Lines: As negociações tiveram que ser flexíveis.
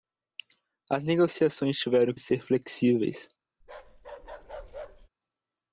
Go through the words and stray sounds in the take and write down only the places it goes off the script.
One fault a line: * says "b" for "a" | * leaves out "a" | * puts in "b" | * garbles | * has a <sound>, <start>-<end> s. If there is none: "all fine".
* leaves out "que"
* has a bark, 3.6-5.1 s